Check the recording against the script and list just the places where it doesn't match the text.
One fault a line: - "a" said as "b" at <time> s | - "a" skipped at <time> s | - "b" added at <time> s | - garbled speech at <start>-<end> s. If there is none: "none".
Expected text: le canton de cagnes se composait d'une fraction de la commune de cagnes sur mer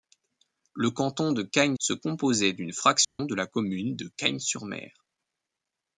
none